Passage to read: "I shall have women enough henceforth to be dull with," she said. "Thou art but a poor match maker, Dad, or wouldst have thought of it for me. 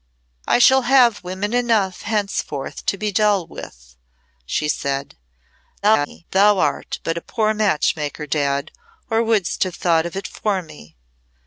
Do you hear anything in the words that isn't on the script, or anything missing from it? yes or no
yes